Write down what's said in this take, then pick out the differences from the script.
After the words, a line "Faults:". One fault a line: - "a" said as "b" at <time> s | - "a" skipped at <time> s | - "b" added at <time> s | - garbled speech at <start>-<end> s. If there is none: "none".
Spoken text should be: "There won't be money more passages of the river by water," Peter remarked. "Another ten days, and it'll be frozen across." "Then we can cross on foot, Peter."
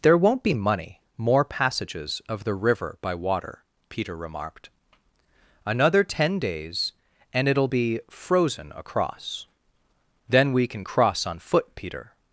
"There won't be money more passages of the river by water," Peter remarked. "Another ten days, and it'll be frozen across." "Then we can cross on foot, Peter."
Faults:
none